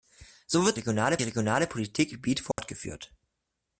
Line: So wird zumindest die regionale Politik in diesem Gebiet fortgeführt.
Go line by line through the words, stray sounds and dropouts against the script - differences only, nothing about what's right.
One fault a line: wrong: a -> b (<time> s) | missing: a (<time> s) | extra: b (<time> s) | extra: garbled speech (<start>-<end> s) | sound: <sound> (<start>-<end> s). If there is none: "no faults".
wrong: zumindest -> regionale (0.7 s)
missing: in diesem (2.1 s)
sound: dropout (2.5-2.6 s)